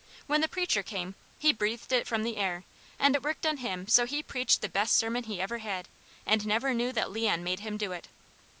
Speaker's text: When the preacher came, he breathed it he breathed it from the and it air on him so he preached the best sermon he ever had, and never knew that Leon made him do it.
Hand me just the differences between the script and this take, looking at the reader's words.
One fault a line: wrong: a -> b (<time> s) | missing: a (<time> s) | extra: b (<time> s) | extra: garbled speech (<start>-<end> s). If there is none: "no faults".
missing: he breathed it (2.1 s)
extra: air (2.4 s)
wrong: air -> worked (3.2 s)